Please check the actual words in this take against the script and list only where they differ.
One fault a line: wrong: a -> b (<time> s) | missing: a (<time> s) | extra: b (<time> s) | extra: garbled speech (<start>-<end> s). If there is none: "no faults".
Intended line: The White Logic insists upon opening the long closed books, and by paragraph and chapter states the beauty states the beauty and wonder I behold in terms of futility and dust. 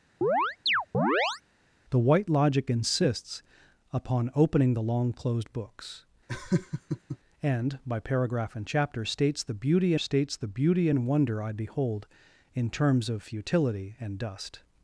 no faults